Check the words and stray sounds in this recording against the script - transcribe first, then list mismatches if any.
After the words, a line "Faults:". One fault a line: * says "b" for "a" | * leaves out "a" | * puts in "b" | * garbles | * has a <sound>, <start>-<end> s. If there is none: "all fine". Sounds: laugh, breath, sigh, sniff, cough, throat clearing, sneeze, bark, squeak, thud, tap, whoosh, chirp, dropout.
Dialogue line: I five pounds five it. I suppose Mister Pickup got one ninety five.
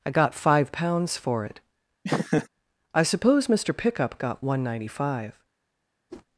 I got five pounds for it. I suppose Mister Pickup got one ninety five.
Faults:
* puts in "got"
* says "for" for "five"
* has a laugh, 2.0-2.5 s
* has a whoosh, 6.1-6.3 s